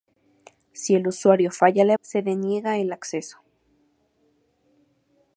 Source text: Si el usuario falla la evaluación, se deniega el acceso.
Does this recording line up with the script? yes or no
no